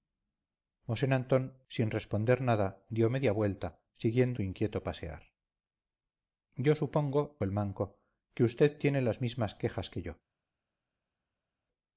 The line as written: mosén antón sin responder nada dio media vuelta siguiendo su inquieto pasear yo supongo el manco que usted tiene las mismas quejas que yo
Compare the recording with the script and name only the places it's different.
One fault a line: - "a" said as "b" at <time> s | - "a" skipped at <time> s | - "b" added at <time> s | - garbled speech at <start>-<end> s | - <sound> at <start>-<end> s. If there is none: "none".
none